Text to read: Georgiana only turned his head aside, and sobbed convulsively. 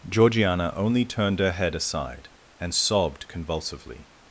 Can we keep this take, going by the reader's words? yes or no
no